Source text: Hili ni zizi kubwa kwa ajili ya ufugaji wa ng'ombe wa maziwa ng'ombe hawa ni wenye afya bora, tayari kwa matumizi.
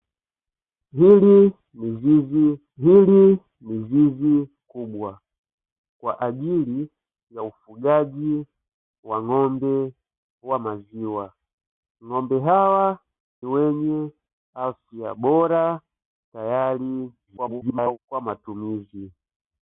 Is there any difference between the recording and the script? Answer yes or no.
yes